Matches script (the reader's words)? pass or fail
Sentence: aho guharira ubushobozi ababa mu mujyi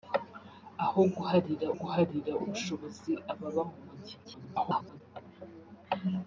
fail